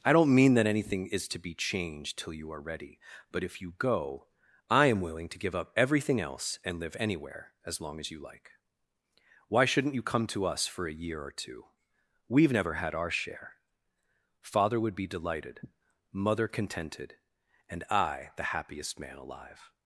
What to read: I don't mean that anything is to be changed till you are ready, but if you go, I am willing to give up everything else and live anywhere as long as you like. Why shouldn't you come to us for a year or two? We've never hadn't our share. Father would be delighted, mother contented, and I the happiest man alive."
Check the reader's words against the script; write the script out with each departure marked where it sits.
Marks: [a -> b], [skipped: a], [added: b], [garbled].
I don't mean that anything is to be changed till you are ready, but if you go, I am willing to give up everything else and live anywhere as long as you like. Why shouldn't you come to us for a year or two? We've never [hadn't -> had] our share. Father would be delighted, mother contented, and I the happiest man alive."